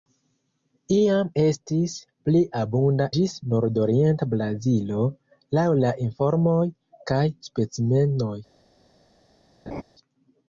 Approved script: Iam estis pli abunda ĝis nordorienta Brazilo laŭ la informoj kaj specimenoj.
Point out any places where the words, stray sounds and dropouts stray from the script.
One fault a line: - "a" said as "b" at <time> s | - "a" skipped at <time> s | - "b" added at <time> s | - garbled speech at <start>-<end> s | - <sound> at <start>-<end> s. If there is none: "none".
- laugh at 9.7-9.8 s